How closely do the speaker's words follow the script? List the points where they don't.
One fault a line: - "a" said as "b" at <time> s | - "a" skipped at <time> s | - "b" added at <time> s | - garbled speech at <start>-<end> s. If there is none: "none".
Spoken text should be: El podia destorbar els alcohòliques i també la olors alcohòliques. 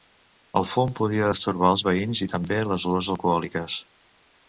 - "fum" added at 0.7 s
- "alcohòliques" said as "veïns" at 1.9 s
- "la" said as "les" at 2.7 s